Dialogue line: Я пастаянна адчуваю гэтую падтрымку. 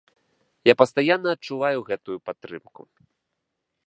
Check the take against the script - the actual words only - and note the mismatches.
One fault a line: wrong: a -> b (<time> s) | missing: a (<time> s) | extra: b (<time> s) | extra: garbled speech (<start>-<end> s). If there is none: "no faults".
no faults